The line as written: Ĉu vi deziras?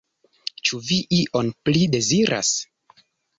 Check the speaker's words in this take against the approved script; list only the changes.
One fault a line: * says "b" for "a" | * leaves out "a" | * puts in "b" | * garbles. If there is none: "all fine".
* puts in "ion pli"